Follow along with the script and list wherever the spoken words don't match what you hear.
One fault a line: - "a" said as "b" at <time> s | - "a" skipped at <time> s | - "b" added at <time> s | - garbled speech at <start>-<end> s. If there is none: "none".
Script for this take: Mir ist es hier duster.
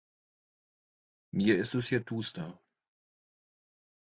none